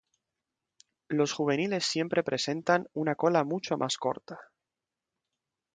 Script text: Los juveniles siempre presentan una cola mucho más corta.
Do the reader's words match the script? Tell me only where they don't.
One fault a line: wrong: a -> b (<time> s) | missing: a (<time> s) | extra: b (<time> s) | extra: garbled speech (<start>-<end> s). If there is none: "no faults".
no faults